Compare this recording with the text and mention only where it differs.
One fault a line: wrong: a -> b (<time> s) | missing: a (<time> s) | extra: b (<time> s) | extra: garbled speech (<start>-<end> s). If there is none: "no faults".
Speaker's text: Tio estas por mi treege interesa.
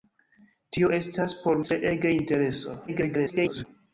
missing: mi (1.6 s)
extra: garbled speech (2.9-3.6 s)